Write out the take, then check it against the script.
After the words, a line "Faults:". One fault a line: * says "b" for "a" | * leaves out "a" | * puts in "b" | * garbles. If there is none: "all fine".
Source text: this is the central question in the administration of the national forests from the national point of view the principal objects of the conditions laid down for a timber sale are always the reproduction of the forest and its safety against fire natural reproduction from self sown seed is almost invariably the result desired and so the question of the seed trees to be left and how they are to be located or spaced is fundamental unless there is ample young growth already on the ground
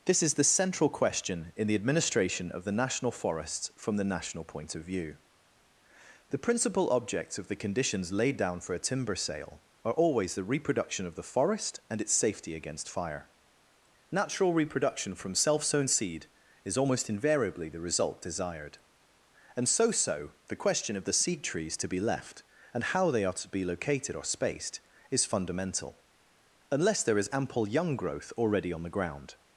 this is the central question in the administration of the national forests from the national point of view the principal objects of the conditions laid down for a timber sale are always the reproduction of the forest and its safety against fire natural reproduction from self sown seed is almost invariably the result desired and so so the question of the seed trees to be left and how they are to be located or spaced is fundamental unless there is ample young growth already on the ground
Faults:
* puts in "so"